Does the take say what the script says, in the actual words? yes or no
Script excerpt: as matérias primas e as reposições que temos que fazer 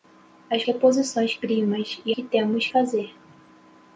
no